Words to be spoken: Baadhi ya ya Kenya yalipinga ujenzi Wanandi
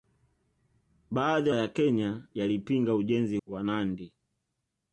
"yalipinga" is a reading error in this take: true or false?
false